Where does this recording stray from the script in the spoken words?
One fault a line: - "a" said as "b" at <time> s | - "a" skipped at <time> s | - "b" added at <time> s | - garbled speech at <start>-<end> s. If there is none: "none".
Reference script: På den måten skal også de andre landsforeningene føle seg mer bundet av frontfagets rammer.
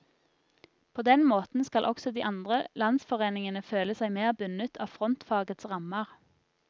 none